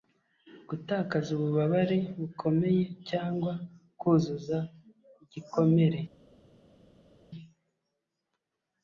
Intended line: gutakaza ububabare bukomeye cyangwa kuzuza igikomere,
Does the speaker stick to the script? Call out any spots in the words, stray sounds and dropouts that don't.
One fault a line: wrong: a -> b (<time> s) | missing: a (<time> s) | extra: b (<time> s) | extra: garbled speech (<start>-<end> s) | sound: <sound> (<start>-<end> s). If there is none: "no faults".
no faults